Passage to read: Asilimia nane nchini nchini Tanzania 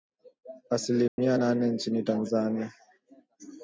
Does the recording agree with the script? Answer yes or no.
no